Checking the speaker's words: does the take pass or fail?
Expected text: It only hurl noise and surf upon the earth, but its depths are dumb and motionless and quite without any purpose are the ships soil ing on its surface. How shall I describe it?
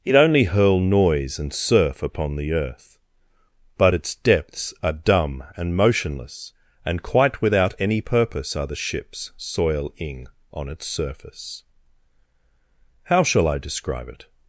pass